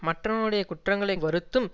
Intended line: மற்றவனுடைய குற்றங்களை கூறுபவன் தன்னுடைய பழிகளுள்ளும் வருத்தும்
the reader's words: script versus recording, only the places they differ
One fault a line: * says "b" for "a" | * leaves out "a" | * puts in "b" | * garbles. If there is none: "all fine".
* leaves out "கூறுபவன் தன்னுடைய பழிகளுள்ளும்"